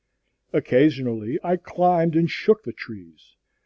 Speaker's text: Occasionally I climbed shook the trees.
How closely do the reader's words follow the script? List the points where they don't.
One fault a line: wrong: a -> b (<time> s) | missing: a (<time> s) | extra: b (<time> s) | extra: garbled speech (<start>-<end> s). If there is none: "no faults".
extra: and (2.2 s)